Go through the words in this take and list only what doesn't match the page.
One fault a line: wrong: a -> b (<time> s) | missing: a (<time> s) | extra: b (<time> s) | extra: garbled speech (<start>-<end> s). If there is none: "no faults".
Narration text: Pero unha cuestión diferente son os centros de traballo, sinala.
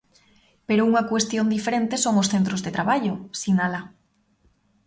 no faults